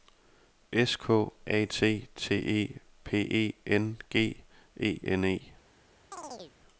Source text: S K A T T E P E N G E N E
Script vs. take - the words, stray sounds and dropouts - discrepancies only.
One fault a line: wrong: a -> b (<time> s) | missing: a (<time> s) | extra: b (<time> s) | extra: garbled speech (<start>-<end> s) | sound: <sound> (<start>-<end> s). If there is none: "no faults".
sound: chirp (6.1-6.6 s)